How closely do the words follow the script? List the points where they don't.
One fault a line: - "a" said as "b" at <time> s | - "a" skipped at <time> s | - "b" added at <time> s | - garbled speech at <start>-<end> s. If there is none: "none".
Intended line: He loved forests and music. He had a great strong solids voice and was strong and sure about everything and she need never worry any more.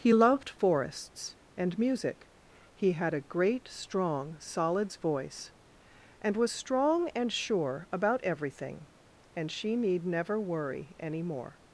none